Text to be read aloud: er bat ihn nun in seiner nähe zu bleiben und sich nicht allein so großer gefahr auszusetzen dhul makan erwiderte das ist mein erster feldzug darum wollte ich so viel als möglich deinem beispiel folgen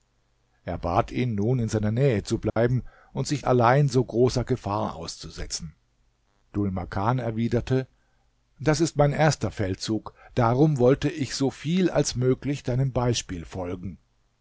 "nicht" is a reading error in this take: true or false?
true